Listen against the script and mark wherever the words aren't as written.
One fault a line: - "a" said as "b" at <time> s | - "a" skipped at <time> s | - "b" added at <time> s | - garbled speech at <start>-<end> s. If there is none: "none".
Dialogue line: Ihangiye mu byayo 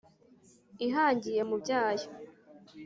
none